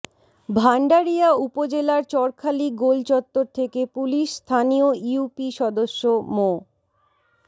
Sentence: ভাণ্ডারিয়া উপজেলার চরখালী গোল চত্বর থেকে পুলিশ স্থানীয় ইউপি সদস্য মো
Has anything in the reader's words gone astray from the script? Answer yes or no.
no